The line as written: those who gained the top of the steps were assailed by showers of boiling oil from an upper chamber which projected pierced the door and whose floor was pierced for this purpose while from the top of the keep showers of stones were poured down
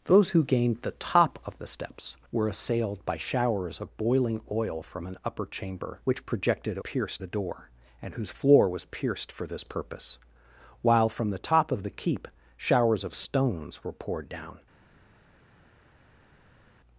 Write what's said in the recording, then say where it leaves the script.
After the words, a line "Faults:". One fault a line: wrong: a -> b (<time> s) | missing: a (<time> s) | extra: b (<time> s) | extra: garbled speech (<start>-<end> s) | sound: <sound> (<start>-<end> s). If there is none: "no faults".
those who gained the top of the steps were assailed by showers of boiling oil from an upper chamber which projected pierced the door and whose floor was pierced for this purpose while from the top of the keep showers of stones were poured down
Faults:
no faults